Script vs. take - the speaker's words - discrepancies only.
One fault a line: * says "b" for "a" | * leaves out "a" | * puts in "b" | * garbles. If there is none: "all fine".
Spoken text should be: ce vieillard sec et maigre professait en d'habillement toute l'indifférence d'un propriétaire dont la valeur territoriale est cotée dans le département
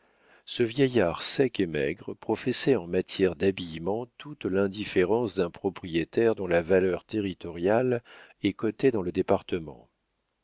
* puts in "matière"